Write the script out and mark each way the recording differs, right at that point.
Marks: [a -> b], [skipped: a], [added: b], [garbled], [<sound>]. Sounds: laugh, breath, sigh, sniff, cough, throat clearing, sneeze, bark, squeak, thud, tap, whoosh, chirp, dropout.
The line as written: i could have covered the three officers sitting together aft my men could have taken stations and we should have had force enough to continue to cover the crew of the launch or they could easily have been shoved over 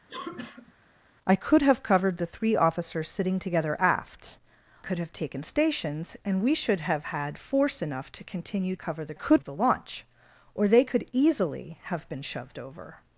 [cough] i could have covered the three officers sitting together aft [skipped: my men] could have taken stations and we should have had force enough to continue [skipped: to] cover the [crew -> could] of the launch or they could easily have been shoved over